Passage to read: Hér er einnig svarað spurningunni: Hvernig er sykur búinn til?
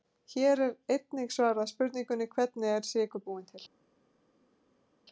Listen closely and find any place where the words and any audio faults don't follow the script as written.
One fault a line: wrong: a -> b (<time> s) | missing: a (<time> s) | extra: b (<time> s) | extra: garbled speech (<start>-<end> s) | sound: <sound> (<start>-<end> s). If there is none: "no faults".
no faults